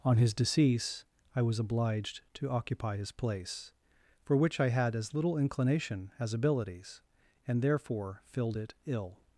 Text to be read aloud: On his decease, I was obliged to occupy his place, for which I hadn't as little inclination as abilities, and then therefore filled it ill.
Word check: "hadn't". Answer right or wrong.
wrong